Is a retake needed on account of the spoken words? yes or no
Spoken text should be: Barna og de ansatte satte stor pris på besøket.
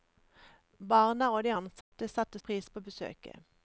yes